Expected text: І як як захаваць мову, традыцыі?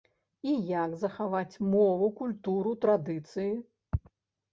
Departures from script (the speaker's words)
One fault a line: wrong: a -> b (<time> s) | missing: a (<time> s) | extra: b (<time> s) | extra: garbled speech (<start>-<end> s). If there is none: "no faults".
missing: як (0.9 s)
extra: культуру (2.2 s)